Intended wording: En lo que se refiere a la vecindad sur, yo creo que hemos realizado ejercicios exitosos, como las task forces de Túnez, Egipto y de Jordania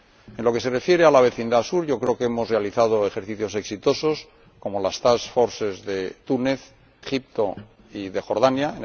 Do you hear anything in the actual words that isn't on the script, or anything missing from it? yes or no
no